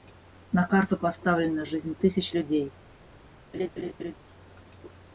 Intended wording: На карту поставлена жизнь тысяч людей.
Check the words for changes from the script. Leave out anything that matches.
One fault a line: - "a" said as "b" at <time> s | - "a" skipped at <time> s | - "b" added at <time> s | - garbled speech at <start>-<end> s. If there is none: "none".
none